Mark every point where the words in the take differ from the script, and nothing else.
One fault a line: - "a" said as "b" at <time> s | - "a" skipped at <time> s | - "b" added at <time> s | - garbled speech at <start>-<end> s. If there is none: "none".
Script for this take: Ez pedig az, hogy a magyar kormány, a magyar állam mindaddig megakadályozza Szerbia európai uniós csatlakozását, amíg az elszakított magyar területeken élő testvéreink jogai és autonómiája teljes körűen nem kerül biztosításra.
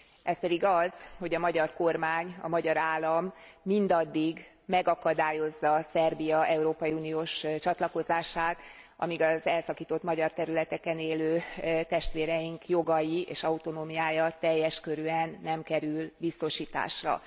none